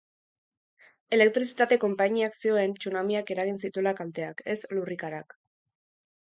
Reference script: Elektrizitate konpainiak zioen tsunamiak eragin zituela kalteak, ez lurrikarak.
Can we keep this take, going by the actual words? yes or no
yes